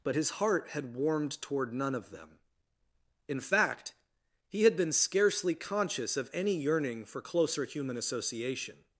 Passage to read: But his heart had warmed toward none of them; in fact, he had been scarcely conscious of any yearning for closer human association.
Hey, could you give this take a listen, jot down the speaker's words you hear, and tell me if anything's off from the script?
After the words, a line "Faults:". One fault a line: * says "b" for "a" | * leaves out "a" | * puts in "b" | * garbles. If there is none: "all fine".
But his heart had warmed toward none of them; in fact, he had been scarcely conscious of any yearning for closer human association.
Faults:
all fine